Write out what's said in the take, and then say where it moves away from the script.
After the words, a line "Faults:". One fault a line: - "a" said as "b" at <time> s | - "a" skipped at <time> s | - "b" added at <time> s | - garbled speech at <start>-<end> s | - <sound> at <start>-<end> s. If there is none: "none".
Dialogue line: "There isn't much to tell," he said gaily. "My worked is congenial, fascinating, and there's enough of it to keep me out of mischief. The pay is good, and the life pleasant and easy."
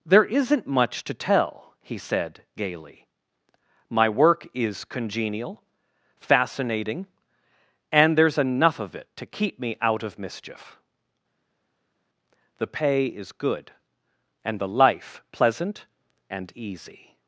"There isn't much to tell," he said gaily. "My work is congenial, fascinating, and there's enough of it to keep me out of mischief. The pay is good, and the life pleasant and easy."
Faults:
- "worked" said as "work" at 4.1 s